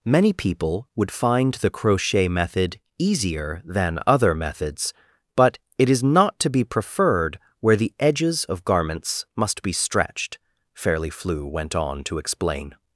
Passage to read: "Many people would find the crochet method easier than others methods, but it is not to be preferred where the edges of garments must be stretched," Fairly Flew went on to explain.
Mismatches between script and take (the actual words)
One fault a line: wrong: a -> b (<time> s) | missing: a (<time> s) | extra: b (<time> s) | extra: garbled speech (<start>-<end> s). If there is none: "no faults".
wrong: others -> other (4.1 s)